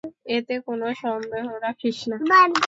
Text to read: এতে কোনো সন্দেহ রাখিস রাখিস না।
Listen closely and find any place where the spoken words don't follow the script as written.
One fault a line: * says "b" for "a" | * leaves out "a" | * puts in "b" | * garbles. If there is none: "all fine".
* leaves out "রাখিস"